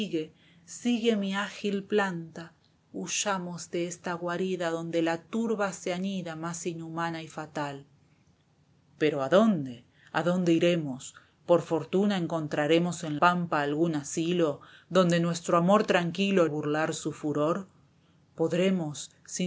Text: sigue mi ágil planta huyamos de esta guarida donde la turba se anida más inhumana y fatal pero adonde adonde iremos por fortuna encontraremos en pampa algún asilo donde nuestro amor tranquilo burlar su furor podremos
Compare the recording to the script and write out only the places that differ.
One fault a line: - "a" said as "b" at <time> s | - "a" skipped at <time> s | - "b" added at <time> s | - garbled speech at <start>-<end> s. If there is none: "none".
none